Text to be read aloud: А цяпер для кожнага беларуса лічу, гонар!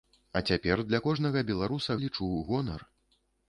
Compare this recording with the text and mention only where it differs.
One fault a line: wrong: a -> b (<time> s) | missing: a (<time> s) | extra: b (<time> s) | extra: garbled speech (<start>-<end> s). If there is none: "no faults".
no faults